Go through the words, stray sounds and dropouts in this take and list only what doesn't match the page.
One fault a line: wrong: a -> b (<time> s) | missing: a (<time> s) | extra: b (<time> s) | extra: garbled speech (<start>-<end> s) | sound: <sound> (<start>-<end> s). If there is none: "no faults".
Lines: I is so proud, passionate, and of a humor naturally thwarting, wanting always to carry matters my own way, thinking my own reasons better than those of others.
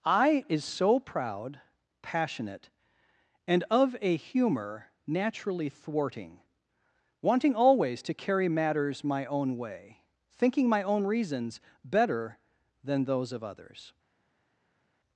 no faults